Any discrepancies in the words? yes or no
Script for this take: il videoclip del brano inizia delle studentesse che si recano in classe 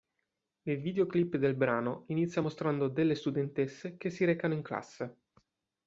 yes